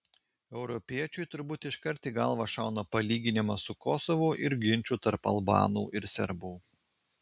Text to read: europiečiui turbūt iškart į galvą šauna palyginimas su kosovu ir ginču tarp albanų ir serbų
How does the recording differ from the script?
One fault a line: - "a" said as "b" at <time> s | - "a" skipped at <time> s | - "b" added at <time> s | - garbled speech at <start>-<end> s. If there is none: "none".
none